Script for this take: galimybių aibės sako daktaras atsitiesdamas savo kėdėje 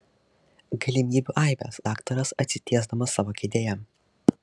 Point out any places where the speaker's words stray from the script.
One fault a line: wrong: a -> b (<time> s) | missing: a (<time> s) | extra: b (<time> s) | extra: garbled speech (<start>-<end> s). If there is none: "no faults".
missing: sako (1.8 s)